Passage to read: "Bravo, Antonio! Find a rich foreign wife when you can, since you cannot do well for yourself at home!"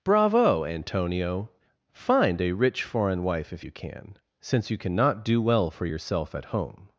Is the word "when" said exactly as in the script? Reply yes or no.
no